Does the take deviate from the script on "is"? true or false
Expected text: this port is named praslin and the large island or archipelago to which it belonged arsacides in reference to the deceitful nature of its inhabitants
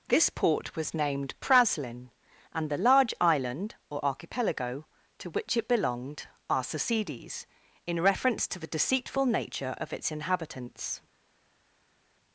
true